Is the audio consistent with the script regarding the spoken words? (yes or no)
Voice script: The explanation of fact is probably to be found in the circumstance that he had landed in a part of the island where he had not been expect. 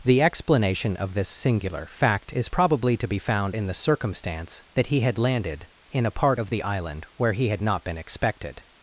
no